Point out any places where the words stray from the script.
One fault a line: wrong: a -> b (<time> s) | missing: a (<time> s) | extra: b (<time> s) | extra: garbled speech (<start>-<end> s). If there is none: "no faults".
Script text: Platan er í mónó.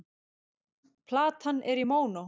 no faults